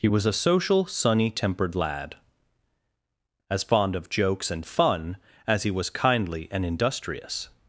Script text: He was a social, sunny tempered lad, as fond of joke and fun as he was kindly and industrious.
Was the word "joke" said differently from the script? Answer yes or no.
yes